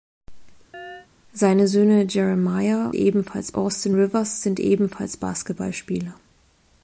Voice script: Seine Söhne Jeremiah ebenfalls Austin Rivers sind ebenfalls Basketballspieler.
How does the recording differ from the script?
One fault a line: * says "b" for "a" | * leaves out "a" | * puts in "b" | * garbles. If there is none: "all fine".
all fine